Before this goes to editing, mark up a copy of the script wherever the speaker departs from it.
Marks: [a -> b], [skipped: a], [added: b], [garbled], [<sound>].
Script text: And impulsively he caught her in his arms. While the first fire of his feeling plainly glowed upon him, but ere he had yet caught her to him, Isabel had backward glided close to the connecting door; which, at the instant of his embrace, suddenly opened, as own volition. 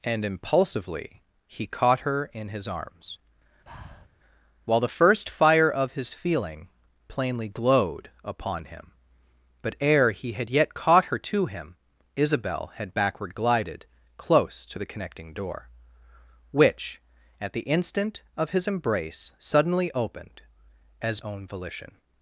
And impulsively he caught her in his arms. [breath] While the first fire of his feeling plainly glowed upon him, but ere he had yet caught her to him, Isabel had backward glided close to the connecting door; which, at the instant of his embrace, suddenly opened, as own volition.